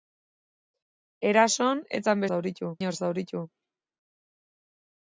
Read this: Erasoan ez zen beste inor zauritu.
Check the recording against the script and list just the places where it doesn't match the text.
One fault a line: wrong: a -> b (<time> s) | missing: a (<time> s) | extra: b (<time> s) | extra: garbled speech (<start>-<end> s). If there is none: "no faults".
wrong: beste -> zauritu (2.3 s)